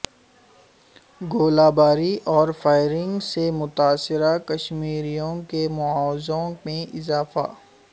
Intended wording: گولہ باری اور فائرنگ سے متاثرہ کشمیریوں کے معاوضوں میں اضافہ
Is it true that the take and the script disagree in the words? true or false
false